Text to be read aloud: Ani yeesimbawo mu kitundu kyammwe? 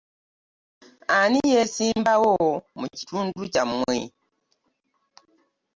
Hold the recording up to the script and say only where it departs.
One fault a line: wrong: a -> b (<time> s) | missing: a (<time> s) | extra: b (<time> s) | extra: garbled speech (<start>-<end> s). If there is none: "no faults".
no faults